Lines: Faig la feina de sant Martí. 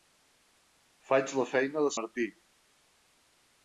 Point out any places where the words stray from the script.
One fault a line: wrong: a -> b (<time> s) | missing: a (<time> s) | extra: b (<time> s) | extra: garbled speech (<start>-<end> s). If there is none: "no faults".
missing: sant (1.9 s)